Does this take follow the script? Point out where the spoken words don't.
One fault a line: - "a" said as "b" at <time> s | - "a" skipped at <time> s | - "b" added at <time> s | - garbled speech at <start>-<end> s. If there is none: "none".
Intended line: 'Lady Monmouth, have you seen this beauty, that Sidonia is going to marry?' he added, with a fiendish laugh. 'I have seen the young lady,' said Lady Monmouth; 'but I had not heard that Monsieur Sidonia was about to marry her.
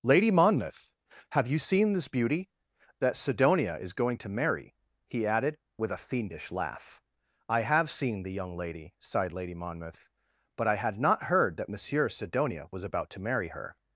- "said" said as "sighed" at 9.0 s